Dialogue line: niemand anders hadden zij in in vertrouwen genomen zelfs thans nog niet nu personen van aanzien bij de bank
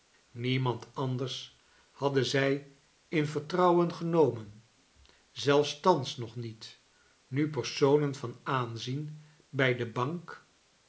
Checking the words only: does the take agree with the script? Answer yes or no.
no